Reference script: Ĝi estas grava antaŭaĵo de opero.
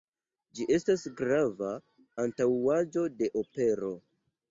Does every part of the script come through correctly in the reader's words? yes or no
yes